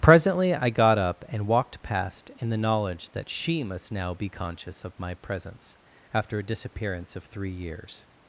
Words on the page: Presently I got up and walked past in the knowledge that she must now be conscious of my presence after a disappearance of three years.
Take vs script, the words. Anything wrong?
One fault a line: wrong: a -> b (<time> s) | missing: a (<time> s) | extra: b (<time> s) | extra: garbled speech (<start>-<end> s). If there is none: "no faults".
no faults